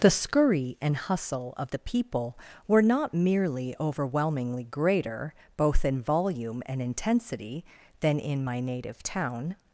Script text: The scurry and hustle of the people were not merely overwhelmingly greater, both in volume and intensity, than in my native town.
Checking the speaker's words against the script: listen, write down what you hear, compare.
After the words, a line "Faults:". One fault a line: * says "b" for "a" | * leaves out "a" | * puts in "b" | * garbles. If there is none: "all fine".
The scurry and hustle of the people were not merely overwhelmingly greater, both in volume and intensity, than in my native town.
Faults:
all fine